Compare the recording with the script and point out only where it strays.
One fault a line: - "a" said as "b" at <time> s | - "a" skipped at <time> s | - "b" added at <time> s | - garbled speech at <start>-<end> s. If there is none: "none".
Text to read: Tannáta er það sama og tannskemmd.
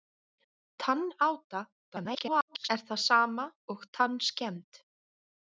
- garbled speech at 1.9-2.7 s